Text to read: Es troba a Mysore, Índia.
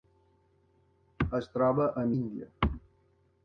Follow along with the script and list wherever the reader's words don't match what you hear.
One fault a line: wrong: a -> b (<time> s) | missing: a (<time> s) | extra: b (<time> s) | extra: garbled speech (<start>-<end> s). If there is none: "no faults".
missing: Mysore (2.1 s)